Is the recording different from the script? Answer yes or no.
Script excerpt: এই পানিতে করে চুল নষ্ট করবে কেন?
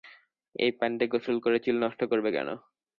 yes